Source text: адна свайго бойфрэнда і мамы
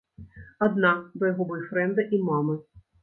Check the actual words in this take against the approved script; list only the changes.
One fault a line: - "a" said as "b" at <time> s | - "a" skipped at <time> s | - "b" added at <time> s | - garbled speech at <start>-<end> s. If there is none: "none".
none